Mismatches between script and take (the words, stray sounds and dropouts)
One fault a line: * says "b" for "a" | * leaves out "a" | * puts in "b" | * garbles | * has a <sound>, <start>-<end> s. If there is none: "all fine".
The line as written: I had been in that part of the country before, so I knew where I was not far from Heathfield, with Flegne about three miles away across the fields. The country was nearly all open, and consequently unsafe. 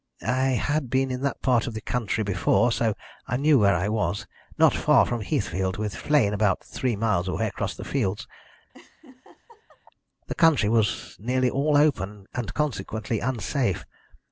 * has a laugh, 8.7-9.8 s